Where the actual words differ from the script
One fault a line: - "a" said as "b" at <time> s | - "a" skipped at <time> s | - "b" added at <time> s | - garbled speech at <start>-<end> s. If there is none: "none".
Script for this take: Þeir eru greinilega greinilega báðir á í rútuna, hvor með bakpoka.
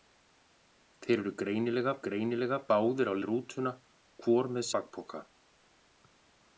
none